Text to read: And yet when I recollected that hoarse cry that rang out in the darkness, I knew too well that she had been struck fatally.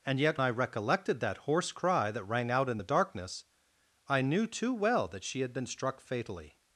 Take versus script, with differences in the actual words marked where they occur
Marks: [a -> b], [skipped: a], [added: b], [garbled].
And yet [skipped: when] I recollected that hoarse cry that rang out in the darkness, I knew too well that she had been struck fatally.